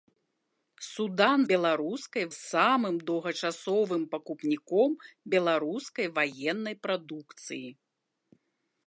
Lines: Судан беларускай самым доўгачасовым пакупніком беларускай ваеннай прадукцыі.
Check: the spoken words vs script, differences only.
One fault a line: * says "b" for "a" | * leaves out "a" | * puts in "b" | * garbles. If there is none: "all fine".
all fine